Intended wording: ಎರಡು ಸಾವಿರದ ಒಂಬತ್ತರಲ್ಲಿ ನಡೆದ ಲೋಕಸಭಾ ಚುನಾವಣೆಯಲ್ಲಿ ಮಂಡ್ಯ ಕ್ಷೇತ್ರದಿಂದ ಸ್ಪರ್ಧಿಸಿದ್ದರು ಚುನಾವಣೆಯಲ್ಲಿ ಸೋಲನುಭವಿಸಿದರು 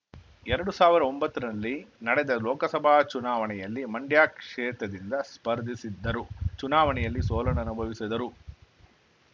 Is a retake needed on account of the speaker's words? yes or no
no